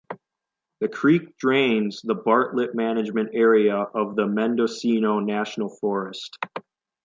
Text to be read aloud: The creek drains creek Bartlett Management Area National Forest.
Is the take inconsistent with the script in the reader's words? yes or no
yes